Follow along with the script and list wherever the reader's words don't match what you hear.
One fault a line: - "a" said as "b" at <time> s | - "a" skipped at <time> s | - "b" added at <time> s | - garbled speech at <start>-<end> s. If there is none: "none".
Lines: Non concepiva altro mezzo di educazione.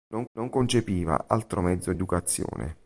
- "non" added at 0.3 s
- "di" skipped at 1.9 s